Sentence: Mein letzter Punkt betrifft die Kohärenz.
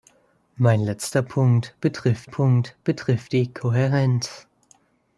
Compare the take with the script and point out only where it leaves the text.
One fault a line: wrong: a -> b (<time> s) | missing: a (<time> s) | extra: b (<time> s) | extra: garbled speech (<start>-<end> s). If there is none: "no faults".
extra: Punkt betrifft (2.2 s)